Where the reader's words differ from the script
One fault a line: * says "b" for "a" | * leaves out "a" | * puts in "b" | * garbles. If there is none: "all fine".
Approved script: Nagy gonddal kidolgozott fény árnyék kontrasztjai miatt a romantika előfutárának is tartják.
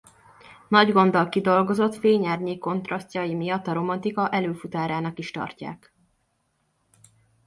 all fine